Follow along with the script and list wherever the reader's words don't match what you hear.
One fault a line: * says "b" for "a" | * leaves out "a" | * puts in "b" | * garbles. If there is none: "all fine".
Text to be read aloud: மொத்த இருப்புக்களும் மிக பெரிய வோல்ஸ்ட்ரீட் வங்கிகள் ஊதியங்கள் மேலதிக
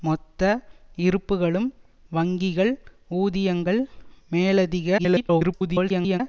* leaves out "மிக பெரிய வோல்ஸ்ட்ரீட்"
* garbles